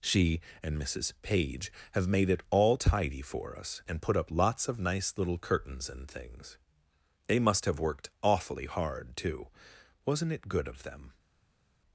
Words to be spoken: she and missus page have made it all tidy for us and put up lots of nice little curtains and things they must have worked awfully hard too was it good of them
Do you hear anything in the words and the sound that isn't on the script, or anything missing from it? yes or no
yes